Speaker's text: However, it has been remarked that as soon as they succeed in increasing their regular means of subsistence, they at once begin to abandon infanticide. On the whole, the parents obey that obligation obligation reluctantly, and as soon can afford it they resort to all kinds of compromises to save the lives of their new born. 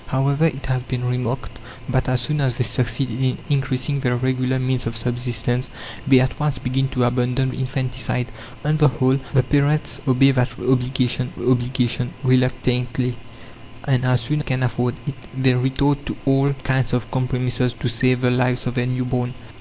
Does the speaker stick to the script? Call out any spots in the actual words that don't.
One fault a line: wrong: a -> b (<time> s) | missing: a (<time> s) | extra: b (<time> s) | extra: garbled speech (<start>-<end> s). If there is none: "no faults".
no faults